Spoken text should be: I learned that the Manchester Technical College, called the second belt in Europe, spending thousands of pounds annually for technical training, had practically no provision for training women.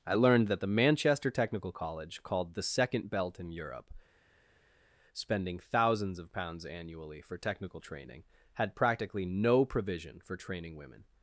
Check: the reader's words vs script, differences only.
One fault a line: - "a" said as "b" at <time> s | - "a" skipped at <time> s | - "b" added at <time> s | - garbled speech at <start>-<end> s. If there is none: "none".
none